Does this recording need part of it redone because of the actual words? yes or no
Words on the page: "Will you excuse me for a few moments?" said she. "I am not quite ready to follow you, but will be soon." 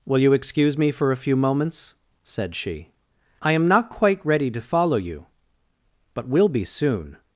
no